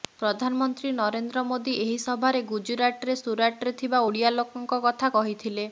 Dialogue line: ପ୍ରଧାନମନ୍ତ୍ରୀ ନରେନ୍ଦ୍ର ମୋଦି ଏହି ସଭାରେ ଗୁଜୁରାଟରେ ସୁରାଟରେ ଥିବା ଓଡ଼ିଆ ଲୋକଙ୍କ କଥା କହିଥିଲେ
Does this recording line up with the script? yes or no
yes